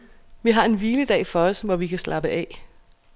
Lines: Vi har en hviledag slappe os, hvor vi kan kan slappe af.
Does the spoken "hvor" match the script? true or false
true